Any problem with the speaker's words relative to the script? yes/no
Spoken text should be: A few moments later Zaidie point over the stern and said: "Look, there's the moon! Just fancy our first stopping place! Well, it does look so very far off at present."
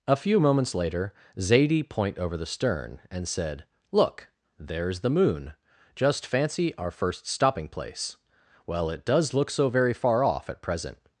no